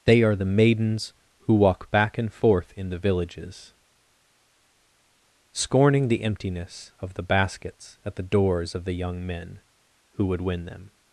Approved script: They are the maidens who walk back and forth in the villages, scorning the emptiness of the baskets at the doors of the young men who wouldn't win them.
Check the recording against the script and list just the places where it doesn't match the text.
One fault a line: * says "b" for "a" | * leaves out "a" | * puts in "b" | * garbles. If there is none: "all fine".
* says "would" for "wouldn't"